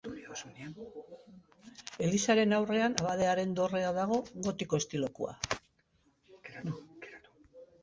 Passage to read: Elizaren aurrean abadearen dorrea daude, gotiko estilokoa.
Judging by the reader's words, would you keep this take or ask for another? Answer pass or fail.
fail